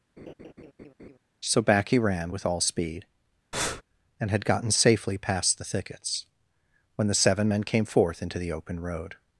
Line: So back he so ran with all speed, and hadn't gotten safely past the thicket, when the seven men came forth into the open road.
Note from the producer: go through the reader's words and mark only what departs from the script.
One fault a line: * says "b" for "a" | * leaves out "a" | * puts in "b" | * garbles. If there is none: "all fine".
* leaves out "so"
* says "had" for "hadn't"
* says "thickets" for "thicket"